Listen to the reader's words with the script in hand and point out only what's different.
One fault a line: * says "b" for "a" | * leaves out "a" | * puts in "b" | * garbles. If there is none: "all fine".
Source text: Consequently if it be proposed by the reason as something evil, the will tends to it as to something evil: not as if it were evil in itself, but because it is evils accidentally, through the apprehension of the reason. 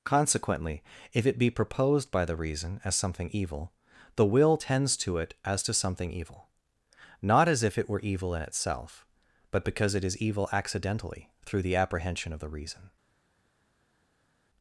* says "evil" for "evils"